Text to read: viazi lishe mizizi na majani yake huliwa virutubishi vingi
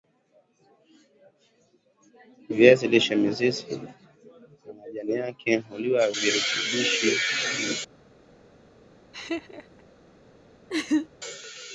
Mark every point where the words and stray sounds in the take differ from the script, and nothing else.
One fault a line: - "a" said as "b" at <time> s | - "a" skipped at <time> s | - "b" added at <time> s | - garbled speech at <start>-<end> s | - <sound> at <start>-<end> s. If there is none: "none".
- laugh at 9.1-9.8 s
- laugh at 10.7-11.1 s